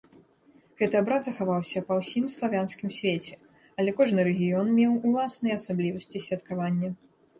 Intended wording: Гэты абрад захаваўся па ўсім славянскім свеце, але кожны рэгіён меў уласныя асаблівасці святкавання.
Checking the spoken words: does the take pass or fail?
pass